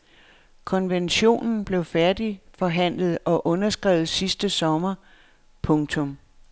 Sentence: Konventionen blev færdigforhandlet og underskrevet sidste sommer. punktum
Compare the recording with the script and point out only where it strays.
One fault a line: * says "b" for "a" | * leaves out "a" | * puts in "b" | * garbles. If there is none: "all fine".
all fine